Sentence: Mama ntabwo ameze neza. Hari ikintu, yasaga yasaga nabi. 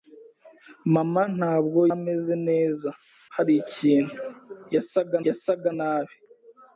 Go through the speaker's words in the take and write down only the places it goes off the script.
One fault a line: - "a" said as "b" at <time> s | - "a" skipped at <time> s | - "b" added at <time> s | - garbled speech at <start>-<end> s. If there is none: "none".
none